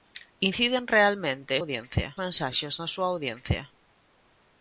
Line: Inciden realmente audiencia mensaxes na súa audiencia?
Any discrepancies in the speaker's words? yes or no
no